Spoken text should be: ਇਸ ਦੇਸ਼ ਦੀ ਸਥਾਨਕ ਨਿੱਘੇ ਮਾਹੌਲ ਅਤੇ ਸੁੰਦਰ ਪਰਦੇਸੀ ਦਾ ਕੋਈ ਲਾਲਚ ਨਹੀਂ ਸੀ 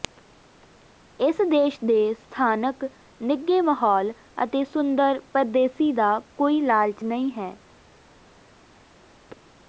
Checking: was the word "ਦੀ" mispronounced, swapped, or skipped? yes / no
yes